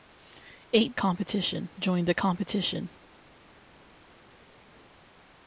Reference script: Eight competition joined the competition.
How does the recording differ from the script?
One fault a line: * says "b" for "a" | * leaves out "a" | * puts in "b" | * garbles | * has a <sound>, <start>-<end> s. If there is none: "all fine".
all fine